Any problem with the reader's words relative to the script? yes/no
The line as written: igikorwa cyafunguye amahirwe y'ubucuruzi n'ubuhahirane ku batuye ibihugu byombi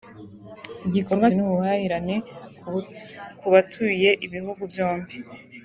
yes